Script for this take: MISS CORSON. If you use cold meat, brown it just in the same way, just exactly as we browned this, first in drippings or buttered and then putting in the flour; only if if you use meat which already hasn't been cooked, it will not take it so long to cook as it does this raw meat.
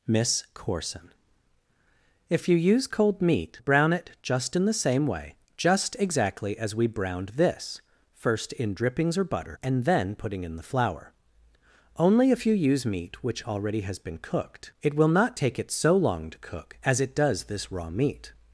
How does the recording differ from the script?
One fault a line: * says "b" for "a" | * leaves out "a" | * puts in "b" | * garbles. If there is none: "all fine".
* says "butter" for "buttered"
* leaves out "if"
* says "has" for "hasn't"